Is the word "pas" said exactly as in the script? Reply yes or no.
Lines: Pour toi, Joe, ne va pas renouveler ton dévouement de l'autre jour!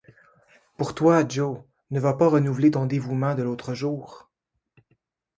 yes